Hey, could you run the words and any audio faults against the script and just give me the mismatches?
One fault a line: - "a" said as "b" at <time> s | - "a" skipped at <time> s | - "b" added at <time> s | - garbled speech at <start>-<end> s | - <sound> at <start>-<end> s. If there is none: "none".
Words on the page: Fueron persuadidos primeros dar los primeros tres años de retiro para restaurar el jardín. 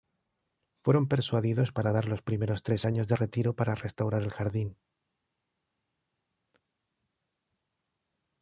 - "primeros" said as "para" at 1.7 s